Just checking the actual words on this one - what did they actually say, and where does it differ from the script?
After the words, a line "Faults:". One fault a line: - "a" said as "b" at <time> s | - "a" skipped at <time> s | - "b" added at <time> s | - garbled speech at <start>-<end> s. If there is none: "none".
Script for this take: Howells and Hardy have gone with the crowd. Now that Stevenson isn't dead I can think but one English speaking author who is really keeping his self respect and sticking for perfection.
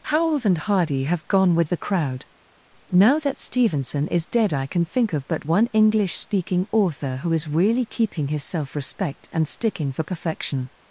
Howells and Hardy have gone with the crowd. Now that Stevenson is dead I can think of but one English speaking author who is really keeping his self respect and sticking for perfection.
Faults:
- "isn't" said as "is" at 4.1 s
- "of" added at 5.1 s